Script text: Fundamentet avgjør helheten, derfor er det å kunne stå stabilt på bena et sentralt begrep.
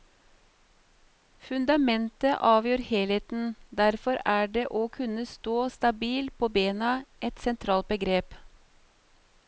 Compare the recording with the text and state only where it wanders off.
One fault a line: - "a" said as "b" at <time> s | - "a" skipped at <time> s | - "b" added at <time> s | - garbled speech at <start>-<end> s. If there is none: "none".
none